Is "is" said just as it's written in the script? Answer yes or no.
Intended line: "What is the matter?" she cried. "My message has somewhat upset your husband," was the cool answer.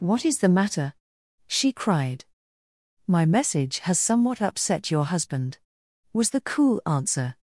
yes